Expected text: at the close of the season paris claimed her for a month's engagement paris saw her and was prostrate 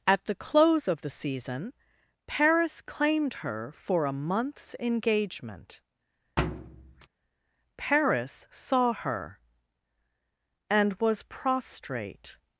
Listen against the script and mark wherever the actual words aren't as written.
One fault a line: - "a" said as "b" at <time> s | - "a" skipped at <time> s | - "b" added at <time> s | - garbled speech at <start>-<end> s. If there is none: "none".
none